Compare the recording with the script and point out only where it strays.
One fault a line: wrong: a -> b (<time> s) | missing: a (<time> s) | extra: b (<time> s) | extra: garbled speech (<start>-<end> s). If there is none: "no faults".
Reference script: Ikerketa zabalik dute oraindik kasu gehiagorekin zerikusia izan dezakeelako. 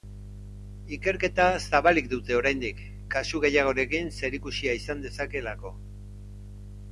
no faults